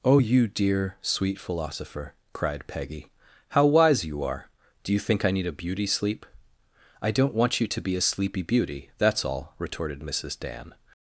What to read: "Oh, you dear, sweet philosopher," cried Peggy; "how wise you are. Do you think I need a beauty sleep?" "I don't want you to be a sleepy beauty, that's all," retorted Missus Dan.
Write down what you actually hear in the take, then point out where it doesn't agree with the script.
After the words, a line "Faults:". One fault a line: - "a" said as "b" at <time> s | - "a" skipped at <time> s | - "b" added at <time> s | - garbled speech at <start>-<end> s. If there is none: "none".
"Oh, you dear, sweet philosopher," cried Peggy; "how wise you are. Do you think I need a beauty sleep?" "I don't want you to be a sleepy beauty, that's all," retorted Missus Dan.
Faults:
none